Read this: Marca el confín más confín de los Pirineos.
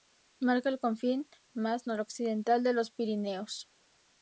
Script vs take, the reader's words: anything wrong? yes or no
yes